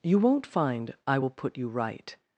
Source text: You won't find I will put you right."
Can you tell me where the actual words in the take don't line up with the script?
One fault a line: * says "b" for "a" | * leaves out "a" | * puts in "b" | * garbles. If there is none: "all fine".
all fine